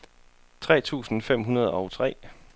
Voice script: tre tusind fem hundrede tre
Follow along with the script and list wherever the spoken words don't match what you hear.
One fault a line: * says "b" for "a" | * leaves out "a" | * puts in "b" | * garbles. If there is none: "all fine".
* puts in "og"